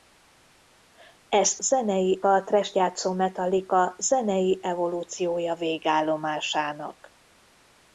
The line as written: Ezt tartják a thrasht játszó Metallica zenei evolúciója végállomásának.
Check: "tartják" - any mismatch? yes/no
yes